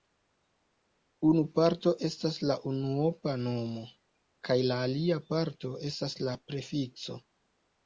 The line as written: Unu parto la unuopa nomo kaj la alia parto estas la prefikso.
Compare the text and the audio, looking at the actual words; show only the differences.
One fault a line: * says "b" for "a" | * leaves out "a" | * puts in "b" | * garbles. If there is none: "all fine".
* puts in "estas"